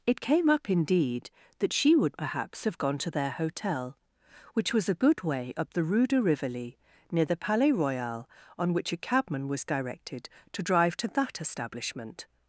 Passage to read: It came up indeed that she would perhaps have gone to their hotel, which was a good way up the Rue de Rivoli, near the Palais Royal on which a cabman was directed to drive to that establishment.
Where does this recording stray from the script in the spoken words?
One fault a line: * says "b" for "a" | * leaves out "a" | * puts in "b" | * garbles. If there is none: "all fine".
all fine